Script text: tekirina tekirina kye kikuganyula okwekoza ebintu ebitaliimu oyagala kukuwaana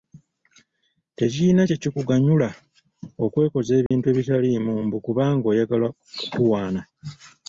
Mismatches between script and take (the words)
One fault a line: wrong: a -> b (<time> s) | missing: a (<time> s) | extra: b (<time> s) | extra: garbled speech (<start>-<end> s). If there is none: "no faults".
missing: tekirina (1.6 s)
extra: mbu kubanga (4.8 s)